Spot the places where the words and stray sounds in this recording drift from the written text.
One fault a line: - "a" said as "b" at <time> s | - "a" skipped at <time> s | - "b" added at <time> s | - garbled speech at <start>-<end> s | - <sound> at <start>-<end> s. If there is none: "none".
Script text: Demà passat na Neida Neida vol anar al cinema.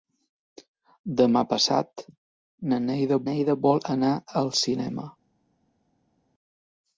none